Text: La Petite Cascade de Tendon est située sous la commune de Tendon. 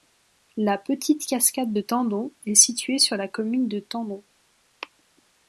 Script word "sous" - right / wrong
wrong